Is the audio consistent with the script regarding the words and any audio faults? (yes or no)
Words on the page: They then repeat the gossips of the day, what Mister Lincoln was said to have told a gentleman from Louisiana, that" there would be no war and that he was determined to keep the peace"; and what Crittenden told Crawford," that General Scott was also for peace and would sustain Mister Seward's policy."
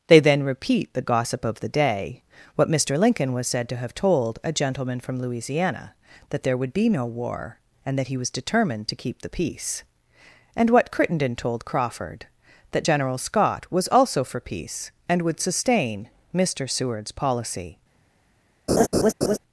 no